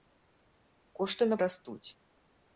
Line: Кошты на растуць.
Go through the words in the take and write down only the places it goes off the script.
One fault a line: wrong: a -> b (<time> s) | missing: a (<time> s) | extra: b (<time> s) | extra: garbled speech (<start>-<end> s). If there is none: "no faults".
no faults